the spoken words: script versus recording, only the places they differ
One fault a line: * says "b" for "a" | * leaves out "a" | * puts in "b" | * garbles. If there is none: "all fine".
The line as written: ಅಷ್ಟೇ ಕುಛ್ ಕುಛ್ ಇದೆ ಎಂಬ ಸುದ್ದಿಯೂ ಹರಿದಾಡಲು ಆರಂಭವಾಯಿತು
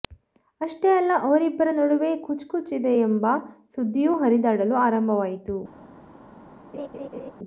* puts in "ಅಲ್ಲ ಅವರಿಬ್ಬರ ನಡುವೆ"